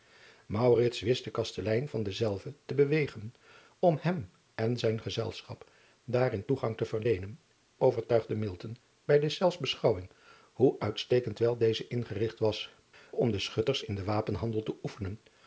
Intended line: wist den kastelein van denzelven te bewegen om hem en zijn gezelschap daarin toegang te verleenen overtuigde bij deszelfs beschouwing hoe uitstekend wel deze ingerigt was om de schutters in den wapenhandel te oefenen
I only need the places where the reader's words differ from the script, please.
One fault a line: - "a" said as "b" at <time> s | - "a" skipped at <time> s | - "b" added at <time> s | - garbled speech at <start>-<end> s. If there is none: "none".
none